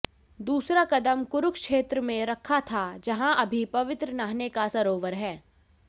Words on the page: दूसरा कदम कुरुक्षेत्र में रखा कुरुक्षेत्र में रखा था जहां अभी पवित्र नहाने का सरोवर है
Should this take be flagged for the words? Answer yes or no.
yes